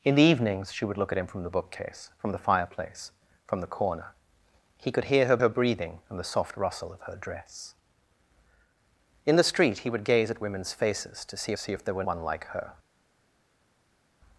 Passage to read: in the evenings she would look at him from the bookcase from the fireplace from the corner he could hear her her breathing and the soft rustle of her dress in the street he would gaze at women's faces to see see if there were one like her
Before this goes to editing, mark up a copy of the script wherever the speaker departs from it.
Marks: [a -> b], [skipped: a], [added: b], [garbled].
in the evenings she would look at him from the bookcase from the fireplace from the corner he could hear her her breathing and the soft rustle of her dress in the street he would gaze at women's faces to see see if there were one like her